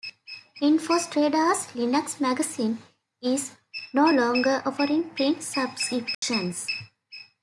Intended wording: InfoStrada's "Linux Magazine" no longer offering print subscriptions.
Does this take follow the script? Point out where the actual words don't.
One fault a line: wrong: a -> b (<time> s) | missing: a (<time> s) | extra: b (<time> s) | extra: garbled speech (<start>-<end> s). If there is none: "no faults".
extra: is (3.2 s)